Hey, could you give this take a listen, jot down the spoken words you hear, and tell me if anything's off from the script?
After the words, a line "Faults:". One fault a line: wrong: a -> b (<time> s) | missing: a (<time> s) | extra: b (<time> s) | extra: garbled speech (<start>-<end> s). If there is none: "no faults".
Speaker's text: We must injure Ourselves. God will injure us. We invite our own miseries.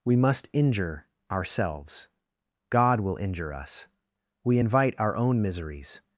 We must injure Ourselves. God will injure us. We invite our own miseries.
Faults:
no faults